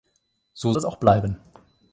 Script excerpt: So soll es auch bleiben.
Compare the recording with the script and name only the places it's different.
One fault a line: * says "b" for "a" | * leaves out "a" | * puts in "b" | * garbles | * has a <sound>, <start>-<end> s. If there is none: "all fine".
* leaves out "soll"